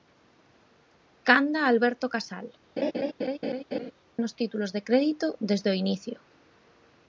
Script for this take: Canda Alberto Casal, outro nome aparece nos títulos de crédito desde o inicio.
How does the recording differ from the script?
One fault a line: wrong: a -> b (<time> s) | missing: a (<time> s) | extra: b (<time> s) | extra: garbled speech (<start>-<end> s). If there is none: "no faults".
missing: outro nome aparece (2.5 s)